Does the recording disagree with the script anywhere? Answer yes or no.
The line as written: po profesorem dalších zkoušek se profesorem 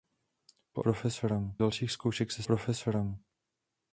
no